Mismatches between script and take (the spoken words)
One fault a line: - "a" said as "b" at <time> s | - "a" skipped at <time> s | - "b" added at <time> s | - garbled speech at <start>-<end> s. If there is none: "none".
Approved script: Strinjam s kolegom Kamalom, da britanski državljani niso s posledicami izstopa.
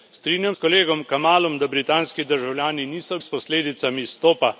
none